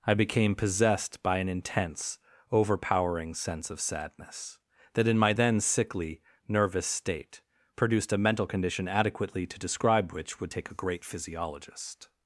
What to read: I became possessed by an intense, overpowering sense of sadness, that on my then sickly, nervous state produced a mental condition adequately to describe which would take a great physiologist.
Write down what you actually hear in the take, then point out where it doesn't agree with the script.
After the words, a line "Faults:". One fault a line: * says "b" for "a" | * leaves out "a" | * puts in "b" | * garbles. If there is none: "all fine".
I became possessed by an intense, overpowering sense of sadness, that in my then sickly, nervous state produced a mental condition adequately to describe which would take a great physiologist.
Faults:
* says "in" for "on"